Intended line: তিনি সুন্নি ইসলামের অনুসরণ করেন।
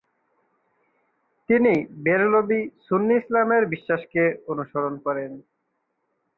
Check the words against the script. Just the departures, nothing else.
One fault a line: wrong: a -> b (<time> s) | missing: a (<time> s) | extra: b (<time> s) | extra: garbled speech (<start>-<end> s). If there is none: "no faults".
extra: বেরলভী (2.0 s)
extra: বিশ্বাসকে (3.6 s)